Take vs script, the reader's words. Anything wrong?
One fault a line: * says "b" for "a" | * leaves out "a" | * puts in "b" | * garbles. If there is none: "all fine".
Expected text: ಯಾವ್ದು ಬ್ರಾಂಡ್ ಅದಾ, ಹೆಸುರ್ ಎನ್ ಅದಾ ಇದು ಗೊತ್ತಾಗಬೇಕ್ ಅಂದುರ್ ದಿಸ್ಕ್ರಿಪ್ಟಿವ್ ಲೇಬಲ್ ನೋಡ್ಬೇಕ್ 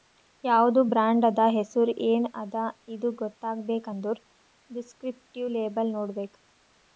all fine